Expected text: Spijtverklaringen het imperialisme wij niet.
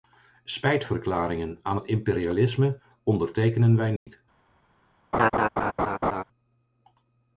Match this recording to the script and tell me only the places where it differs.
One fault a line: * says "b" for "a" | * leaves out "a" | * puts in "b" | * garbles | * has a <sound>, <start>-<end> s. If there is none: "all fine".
* puts in "aan"
* puts in "ondertekenen"
* has a dropout, 4.0-4.1 s
* has a laugh, 5.1-6.2 s